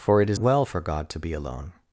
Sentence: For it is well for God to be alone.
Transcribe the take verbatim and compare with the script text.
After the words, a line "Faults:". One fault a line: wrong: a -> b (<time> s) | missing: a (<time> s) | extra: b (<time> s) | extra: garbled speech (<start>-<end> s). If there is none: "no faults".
For it is well for God to be alone.
Faults:
no faults